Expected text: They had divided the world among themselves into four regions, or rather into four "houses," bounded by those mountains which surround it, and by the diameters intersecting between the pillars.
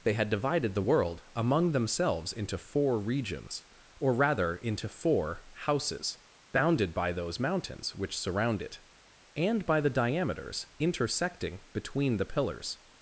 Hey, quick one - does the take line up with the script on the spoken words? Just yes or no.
yes